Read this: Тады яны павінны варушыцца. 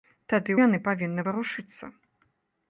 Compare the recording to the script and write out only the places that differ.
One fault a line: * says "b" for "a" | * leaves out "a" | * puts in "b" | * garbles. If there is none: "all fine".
all fine